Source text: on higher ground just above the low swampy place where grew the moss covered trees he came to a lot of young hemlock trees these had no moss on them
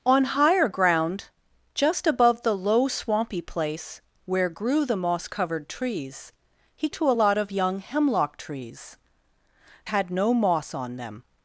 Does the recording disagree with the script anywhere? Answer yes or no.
yes